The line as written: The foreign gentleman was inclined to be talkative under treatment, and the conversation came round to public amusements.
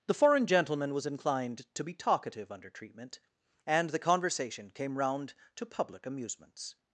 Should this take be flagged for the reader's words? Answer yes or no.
no